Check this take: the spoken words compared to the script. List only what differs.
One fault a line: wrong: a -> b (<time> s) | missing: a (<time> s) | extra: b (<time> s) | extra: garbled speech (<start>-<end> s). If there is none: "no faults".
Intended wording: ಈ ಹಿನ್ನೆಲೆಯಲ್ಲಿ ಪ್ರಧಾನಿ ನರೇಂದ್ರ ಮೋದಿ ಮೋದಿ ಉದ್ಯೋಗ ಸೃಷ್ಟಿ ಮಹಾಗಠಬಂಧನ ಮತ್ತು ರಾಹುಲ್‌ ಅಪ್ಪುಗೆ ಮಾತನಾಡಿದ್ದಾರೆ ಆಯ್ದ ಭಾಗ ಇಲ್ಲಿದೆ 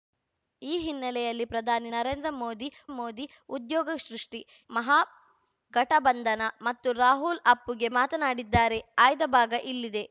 no faults